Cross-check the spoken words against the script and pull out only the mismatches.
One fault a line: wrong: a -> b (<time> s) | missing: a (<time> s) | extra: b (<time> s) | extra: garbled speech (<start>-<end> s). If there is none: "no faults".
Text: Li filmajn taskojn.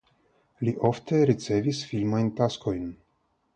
extra: ofte ricevis (0.9 s)